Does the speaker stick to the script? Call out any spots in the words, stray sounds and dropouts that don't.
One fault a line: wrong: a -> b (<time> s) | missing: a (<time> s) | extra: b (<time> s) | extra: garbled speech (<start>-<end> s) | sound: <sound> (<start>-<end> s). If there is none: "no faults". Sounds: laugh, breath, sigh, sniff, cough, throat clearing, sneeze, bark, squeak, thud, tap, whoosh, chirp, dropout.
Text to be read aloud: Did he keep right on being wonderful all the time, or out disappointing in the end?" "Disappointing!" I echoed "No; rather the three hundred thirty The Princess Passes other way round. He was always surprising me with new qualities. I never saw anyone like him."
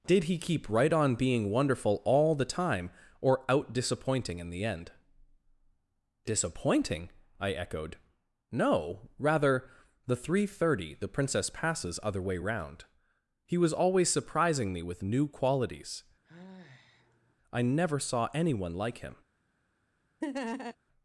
sound: sigh (16.2-17.4 s)
sound: laugh (20.2-20.8 s)